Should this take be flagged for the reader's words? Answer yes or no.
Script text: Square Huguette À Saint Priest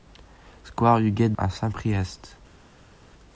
no